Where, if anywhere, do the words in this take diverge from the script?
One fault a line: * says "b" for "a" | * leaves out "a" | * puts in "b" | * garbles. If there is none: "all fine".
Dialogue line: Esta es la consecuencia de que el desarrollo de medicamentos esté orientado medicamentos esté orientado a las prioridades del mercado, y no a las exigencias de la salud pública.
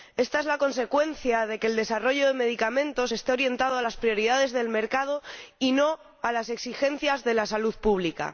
* leaves out "medicamentos esté orientado"